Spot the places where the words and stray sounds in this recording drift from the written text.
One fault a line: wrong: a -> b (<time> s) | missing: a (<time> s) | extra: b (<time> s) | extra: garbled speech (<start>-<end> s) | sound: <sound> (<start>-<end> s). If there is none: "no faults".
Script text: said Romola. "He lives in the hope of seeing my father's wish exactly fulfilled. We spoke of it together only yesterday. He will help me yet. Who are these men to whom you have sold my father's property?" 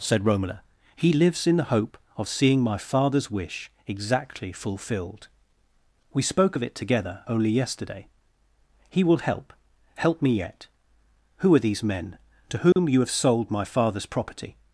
extra: help (9.9 s)
sound: dropout (12.7-12.8 s)